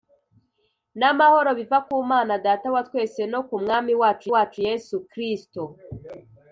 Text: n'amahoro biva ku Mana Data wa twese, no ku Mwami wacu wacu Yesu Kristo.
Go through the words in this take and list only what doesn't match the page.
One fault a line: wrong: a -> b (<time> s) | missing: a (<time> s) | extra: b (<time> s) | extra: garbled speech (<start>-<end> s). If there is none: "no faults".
no faults